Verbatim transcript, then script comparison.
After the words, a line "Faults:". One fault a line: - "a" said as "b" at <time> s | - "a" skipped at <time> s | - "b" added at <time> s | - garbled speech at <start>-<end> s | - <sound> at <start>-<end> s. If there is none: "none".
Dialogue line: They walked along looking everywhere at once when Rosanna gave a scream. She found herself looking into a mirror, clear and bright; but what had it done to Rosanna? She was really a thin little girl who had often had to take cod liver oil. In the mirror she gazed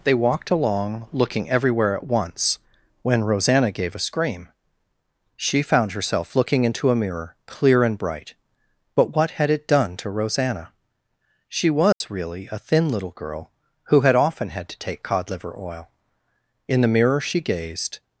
They walked along looking everywhere at once when Rosanna gave a scream. She found herself looking into a mirror, clear and bright; but what had it done to Rosanna? She was really a thin little girl who had often had to take cod liver oil. In the mirror she gazed
Faults:
- dropout at 11.9-12.0 s